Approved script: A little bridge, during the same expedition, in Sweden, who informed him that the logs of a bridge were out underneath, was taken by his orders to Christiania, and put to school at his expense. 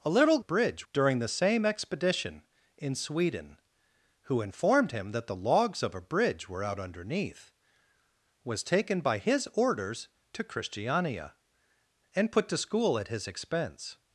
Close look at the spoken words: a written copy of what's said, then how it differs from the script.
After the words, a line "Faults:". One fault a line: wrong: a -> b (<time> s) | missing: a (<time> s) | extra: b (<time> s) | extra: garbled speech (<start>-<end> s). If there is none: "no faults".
A little bridge, during the same expedition, in Sweden, who informed him that the logs of a bridge were out underneath, was taken by his orders to Christiania, and put to school at his expense.
Faults:
no faults